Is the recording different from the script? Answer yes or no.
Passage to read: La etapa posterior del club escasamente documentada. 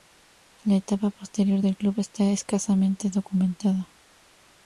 yes